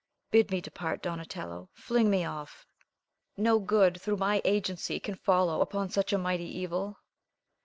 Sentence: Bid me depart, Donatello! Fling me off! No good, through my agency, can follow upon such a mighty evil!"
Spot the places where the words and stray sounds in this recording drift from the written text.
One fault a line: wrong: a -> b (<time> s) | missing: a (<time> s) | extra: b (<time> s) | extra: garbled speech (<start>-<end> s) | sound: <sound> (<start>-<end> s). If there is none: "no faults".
no faults